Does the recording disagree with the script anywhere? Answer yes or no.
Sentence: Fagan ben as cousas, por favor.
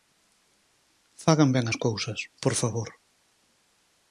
no